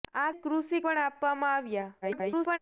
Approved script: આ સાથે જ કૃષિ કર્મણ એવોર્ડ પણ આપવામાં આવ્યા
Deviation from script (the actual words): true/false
true